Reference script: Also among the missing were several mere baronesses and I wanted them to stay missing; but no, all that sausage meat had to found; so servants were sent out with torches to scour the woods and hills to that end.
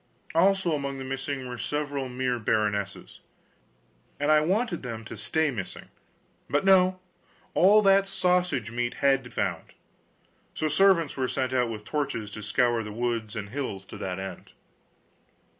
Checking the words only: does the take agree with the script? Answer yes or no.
yes